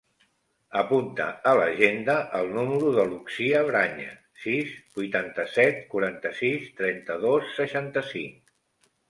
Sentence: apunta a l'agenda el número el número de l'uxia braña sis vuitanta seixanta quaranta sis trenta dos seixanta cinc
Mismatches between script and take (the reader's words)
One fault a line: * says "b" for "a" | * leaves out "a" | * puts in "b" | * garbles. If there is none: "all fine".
* leaves out "el número"
* says "set" for "seixanta"